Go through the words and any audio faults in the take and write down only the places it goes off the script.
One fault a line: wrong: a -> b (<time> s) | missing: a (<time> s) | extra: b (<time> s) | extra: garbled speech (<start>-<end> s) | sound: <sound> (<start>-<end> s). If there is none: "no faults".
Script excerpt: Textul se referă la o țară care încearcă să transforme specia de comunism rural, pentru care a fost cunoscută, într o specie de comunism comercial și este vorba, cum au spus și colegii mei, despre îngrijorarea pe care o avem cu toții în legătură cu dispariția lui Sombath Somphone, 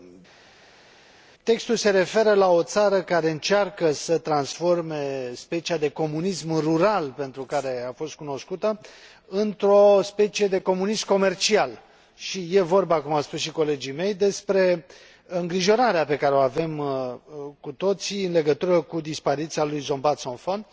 no faults